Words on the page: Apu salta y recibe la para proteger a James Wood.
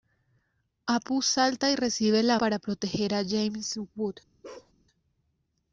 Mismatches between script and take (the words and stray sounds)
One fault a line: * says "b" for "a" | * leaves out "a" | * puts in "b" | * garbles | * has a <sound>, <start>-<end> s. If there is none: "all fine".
* has a bark, 4.4-4.7 s